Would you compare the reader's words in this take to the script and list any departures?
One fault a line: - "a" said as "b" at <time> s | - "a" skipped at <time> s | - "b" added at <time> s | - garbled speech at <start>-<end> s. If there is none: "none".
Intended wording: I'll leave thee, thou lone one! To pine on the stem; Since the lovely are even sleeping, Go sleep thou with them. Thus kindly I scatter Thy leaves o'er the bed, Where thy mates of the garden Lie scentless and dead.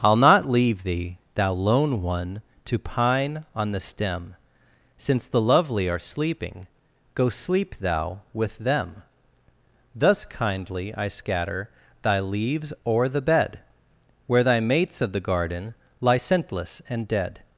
- "not" added at 0.2 s
- "even" skipped at 6.0 s